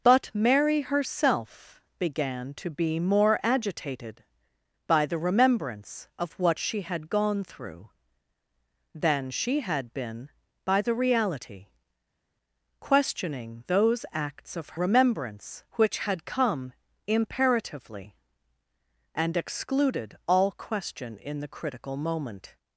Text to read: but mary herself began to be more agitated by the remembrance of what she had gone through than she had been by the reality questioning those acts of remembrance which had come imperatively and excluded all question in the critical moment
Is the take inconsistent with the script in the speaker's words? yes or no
no